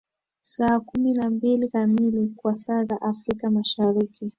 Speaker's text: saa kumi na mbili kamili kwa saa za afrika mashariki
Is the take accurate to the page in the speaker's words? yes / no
yes